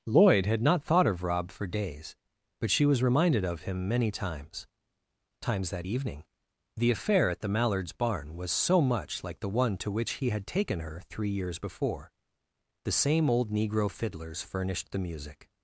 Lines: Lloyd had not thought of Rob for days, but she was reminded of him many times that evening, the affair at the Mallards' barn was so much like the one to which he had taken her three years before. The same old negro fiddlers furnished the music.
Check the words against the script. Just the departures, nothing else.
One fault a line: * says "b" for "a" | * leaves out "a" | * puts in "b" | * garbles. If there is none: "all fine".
* puts in "times"